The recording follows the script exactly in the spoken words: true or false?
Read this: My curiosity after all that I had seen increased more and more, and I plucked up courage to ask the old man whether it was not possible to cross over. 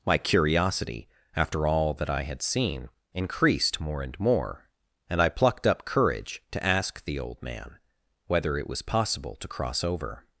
false